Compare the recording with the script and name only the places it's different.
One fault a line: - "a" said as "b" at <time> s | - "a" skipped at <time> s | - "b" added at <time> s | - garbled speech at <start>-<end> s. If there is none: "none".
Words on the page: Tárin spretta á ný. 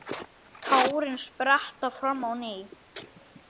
- "fram" added at 2.0 s